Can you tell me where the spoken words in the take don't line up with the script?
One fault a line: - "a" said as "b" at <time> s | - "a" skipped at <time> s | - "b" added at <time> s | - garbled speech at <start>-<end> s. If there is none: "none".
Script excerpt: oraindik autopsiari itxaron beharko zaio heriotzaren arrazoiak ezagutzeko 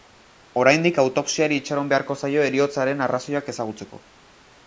none